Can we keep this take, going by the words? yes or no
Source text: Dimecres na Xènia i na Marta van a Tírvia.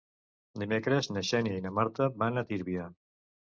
yes